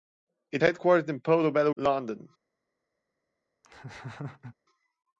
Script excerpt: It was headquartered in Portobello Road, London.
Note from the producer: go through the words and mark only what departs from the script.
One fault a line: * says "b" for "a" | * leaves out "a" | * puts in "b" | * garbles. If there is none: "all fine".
* leaves out "was"
* leaves out "Road"